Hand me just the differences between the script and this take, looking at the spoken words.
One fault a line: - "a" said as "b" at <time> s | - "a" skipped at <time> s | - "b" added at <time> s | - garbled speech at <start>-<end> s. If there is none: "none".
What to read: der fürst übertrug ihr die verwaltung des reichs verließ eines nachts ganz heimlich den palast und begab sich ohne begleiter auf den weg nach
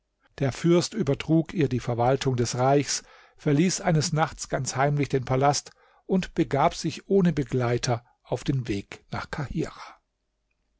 none